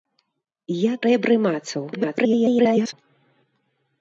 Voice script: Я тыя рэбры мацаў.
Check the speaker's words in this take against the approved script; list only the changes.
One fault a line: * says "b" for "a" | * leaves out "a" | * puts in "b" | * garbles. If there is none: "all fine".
* leaves out "тыя"
* garbles